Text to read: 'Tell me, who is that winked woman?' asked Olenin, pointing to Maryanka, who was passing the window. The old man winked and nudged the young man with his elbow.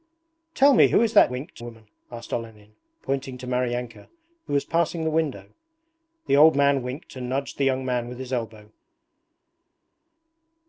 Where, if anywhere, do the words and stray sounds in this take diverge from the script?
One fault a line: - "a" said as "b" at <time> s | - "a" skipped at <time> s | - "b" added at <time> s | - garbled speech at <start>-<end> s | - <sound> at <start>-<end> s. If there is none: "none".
none